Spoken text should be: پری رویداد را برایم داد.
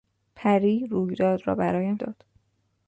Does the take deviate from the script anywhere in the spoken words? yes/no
no